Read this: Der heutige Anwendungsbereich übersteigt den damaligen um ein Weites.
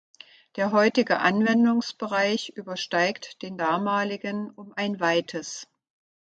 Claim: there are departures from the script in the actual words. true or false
false